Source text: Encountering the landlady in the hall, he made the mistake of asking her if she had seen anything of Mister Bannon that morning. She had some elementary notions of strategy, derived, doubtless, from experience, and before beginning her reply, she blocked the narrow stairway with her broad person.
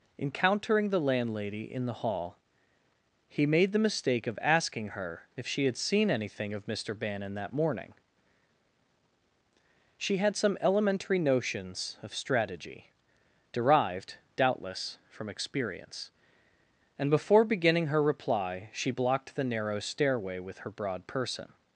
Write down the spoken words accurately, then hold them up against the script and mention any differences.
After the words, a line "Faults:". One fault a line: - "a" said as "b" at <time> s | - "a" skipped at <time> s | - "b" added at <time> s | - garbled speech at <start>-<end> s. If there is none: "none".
Encountering the landlady in the hall, he made the mistake of asking her if she had seen anything of Mister Bannon that morning. She had some elementary notions of strategy, derived, doubtless, from experience, and before beginning her reply, she blocked the narrow stairway with her broad person.
Faults:
none